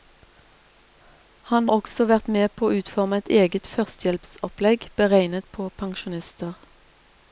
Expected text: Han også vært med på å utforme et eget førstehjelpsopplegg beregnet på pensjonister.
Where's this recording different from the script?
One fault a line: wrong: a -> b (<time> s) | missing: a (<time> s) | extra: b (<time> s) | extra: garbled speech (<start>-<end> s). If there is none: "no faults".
no faults